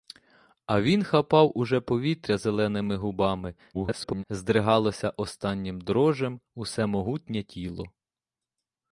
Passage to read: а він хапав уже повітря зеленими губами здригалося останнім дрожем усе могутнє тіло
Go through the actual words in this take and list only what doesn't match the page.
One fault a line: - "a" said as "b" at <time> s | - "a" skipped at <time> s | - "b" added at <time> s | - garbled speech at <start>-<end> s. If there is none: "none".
- garbled speech at 3.7-4.2 s